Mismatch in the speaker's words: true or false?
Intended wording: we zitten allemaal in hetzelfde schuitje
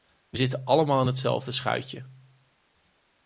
false